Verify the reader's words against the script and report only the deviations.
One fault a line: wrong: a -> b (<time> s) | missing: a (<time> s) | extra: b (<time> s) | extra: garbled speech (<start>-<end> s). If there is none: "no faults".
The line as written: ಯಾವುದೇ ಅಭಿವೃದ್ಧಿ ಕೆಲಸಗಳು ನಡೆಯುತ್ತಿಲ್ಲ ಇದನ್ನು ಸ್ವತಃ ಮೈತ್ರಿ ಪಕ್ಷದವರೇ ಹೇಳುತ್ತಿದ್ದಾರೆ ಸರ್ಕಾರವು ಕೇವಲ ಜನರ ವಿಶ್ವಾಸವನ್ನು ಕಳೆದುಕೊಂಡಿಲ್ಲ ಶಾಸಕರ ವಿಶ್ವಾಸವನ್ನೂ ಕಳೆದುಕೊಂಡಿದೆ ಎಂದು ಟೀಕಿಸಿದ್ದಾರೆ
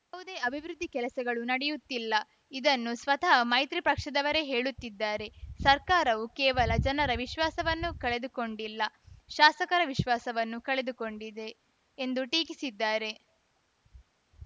no faults